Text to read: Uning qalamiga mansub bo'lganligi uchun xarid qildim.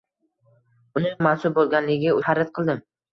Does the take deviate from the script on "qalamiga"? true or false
true